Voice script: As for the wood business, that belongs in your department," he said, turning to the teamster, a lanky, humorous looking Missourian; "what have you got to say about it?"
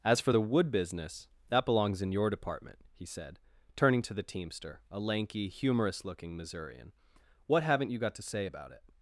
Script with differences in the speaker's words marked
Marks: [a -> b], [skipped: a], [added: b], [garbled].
As for the wood business, that belongs in your department," he said, turning to the teamster, a lanky, humorous looking Missourian; "what [have -> haven't] you got to say about it?"